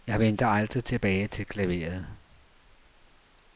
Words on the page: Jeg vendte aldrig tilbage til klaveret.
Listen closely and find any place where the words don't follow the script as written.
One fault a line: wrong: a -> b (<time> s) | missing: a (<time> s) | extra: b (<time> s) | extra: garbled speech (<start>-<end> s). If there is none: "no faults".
no faults